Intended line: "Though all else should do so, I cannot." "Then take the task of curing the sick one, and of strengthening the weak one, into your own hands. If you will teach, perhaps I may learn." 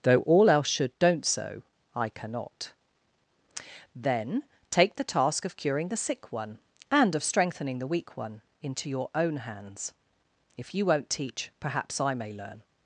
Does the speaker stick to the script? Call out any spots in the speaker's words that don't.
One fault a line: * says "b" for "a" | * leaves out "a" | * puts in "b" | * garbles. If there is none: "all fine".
* says "don't" for "do"
* says "won't" for "will"